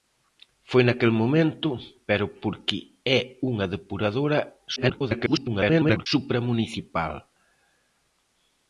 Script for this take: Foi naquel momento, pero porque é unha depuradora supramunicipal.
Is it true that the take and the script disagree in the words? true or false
true